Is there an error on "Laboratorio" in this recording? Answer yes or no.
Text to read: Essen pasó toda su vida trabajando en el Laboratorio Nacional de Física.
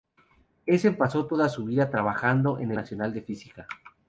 yes